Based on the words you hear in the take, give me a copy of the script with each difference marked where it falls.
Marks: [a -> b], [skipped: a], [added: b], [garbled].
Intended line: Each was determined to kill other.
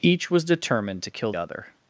Each was determined to kill other.